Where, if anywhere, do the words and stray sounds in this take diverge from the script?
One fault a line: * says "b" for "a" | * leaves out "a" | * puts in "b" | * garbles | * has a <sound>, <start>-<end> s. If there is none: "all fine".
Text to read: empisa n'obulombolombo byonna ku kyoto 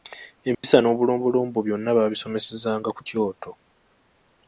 * has a dropout, 0.5-0.6 s
* puts in "baabisomesezanga"